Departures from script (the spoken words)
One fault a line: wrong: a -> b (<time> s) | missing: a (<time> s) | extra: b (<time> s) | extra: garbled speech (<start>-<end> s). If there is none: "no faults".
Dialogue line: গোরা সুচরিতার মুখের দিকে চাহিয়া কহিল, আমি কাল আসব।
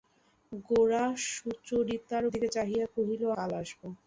missing: মুখের (2.2 s)
missing: আমি (3.2 s)